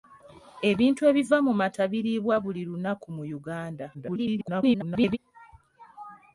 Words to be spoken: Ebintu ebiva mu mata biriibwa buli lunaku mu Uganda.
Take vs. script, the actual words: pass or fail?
fail